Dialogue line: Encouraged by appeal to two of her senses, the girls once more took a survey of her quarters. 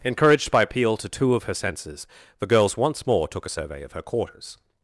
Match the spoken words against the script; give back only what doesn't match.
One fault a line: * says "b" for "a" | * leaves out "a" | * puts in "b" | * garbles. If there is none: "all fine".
all fine